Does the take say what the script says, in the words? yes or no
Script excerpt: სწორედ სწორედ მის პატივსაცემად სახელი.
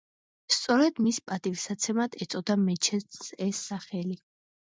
no